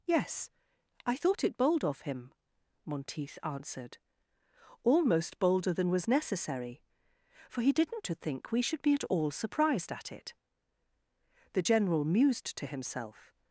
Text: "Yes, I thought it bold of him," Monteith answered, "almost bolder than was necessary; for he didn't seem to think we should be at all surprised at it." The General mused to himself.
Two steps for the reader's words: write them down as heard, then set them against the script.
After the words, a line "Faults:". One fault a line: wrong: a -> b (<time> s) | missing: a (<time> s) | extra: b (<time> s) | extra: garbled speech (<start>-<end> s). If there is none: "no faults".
"Yes, I thought it bold of him," Monteith answered, "almost bolder than was necessary; for he didn't to think we should be at all surprised at it." The General mused to himself.
Faults:
missing: seem (8.1 s)